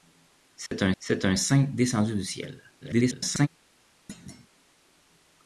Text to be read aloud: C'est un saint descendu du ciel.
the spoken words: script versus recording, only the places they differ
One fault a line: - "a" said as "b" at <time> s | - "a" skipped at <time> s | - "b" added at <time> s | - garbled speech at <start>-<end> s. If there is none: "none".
- "c'est un" added at 1.0 s
- garbled speech at 2.8-3.5 s